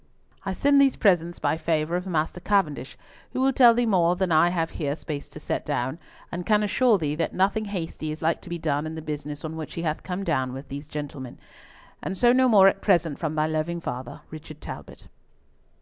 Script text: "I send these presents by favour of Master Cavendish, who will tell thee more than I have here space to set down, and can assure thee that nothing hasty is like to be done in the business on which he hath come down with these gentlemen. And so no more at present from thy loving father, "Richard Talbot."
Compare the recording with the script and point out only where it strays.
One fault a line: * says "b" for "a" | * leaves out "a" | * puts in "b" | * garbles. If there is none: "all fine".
all fine